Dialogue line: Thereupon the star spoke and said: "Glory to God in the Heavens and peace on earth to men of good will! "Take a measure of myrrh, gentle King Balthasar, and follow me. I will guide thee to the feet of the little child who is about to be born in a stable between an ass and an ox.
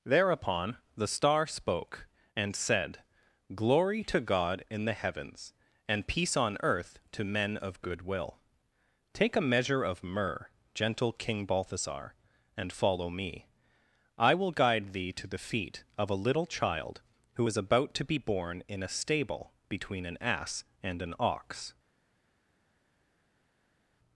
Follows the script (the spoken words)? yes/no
no